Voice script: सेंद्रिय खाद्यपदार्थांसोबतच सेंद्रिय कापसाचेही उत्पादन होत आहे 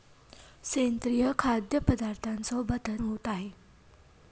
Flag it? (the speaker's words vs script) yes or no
yes